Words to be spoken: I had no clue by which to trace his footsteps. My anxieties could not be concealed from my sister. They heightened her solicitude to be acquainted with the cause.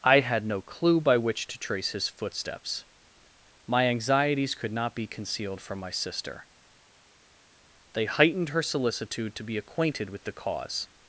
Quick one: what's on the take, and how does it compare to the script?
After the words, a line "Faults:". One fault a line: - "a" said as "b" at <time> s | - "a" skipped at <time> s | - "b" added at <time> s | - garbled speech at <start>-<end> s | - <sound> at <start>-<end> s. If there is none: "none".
I had no clue by which to trace his footsteps. My anxieties could not be concealed from my sister. They heightened her solicitude to be acquainted with the cause.
Faults:
none